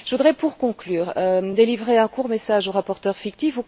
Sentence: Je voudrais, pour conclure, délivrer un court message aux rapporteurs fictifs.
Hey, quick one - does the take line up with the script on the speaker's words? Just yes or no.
yes